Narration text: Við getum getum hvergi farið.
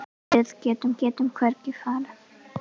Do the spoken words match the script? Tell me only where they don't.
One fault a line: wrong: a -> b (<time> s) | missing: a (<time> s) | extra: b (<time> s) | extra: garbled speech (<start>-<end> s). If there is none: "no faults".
no faults